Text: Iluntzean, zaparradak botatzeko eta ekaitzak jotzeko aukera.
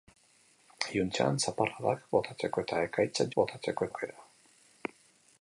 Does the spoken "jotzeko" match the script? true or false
false